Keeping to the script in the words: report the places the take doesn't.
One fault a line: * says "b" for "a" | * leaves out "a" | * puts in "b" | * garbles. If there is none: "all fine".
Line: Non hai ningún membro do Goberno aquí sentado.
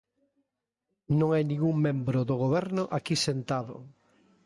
all fine